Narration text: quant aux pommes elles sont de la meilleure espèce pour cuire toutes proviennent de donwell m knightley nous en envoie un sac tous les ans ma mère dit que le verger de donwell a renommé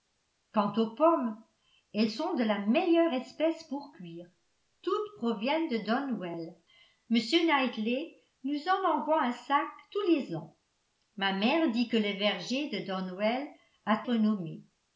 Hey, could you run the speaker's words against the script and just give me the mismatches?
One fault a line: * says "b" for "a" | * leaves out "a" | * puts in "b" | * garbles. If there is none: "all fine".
all fine